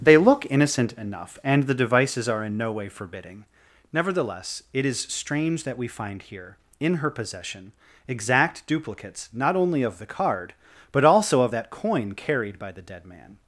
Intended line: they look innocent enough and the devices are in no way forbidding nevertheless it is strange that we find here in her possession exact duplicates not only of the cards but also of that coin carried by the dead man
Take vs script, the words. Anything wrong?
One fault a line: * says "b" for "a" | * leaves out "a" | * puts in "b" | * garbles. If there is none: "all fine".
* says "card" for "cards"